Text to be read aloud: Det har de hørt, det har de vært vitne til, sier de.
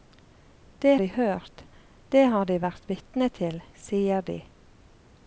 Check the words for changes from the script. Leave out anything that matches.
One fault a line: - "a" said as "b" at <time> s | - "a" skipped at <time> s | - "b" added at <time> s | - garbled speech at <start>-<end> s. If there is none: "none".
- "har" skipped at 0.9 s